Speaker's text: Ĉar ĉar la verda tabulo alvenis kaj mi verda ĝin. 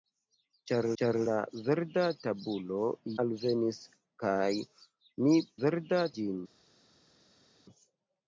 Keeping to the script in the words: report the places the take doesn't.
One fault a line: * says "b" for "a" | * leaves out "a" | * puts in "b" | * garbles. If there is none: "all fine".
all fine